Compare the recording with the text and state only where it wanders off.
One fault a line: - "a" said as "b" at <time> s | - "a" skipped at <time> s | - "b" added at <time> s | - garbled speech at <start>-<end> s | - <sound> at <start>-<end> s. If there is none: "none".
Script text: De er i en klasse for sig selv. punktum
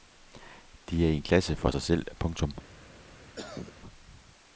- cough at 3.4-3.7 s